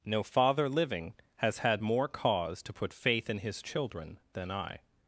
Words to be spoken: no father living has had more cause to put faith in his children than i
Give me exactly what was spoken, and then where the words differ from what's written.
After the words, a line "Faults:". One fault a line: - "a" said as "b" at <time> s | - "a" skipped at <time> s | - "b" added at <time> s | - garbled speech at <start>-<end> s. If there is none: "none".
no father living has had more cause to put faith in his children than i
Faults:
none